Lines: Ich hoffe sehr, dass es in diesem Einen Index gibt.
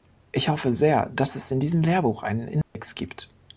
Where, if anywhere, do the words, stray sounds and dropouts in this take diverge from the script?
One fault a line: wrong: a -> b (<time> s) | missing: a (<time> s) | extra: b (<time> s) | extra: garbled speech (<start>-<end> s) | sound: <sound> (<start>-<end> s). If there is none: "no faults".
extra: Lehrbuch (1.8 s)
sound: dropout (2.6-2.8 s)